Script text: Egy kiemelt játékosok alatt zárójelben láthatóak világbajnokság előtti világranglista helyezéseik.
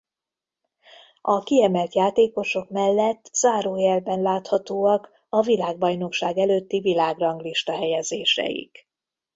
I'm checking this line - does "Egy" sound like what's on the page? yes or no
no